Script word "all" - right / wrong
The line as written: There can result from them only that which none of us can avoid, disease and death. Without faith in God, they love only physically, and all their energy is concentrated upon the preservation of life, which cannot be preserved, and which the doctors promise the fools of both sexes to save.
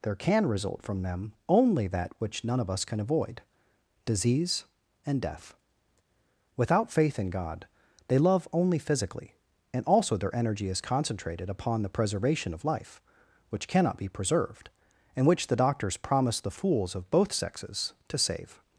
wrong